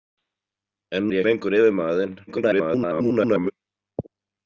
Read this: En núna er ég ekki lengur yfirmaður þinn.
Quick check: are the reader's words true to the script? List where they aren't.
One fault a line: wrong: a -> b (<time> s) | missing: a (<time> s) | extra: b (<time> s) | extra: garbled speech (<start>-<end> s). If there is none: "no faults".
missing: núna (1.1 s)
missing: ekki (1.2 s)
extra: garbled speech (2.3-3.5 s)